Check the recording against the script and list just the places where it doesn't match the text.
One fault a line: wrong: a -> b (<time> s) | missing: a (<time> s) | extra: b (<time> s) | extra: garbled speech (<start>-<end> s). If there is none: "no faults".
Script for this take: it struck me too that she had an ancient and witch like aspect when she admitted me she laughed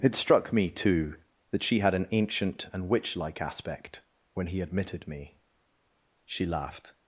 wrong: she -> he (4.5 s)